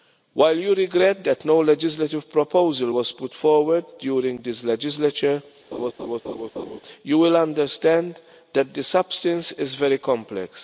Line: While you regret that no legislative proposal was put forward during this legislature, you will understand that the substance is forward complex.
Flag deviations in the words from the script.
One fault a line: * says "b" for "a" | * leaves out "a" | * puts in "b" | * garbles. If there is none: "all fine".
* says "very" for "forward"